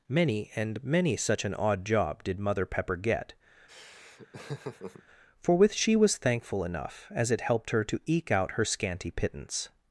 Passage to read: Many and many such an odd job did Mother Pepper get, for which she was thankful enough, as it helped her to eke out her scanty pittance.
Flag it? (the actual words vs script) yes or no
yes